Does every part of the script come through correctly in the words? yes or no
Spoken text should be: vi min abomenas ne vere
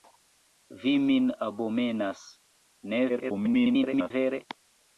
no